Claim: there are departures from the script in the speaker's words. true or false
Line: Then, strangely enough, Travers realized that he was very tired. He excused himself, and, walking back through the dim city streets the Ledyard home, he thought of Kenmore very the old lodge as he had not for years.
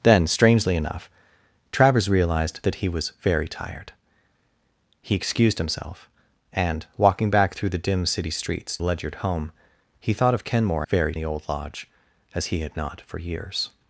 false